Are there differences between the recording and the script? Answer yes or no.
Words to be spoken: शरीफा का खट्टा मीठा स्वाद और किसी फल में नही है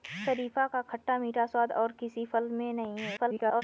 yes